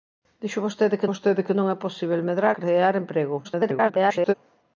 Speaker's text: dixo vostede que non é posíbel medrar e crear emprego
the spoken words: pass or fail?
fail